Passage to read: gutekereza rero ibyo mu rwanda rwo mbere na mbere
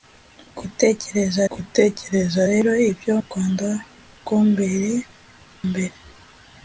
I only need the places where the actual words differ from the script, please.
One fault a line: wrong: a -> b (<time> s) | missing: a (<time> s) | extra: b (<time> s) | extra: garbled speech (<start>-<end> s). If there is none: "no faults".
extra: gutekereza (1.5 s)
missing: mu (3.1 s)
missing: na (4.9 s)